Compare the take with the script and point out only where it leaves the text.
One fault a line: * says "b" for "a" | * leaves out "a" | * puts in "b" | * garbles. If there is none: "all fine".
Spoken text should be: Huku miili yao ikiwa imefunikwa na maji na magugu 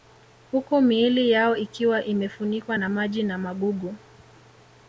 all fine